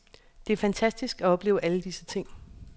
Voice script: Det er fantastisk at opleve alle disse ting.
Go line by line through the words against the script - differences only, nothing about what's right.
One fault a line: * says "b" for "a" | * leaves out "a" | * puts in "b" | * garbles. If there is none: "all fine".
all fine